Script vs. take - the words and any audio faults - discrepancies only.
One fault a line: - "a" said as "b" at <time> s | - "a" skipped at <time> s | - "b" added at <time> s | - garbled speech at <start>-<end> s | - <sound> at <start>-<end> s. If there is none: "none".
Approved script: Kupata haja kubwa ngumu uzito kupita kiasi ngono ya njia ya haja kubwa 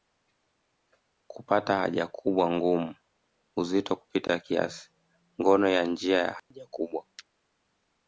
- dropout at 6.4-6.5 s